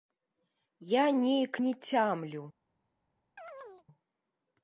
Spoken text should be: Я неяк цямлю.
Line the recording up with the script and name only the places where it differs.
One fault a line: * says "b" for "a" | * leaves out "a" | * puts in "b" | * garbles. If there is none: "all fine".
* puts in "не"